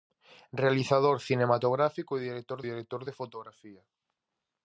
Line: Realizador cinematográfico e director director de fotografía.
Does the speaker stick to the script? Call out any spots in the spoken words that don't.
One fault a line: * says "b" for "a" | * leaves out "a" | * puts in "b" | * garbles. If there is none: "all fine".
all fine